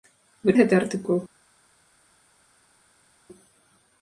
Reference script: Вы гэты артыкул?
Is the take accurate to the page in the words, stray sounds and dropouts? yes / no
yes